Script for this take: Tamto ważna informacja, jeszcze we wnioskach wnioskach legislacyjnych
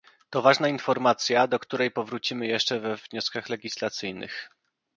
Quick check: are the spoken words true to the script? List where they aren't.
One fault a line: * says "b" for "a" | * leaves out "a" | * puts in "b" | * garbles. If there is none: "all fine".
* says "To" for "Tamto"
* puts in "do której powrócimy"
* leaves out "wnioskach"